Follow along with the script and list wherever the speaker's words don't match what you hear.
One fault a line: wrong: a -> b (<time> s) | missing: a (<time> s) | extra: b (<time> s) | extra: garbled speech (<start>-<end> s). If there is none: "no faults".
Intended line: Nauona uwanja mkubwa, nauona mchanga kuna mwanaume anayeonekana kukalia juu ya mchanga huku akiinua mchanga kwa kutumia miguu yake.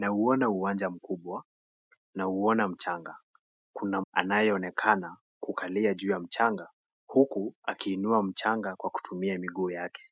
missing: mwanaume (4.0 s)